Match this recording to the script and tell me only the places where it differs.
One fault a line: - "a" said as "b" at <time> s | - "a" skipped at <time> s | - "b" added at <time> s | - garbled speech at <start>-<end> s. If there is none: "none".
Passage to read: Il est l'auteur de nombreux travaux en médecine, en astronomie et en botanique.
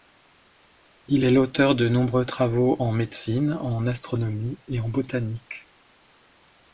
none